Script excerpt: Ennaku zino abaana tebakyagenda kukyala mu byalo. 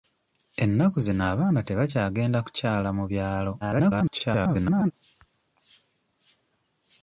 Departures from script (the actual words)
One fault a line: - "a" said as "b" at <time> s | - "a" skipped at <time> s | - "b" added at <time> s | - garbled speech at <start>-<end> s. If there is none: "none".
- garbled speech at 3.6-4.9 s